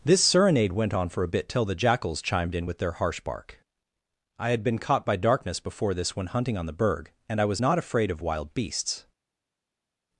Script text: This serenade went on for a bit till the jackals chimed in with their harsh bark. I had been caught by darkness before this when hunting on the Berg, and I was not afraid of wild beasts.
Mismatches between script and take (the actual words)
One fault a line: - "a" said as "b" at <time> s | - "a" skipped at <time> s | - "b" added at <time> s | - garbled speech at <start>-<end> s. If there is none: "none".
none